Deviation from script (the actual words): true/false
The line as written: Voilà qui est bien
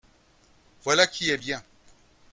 false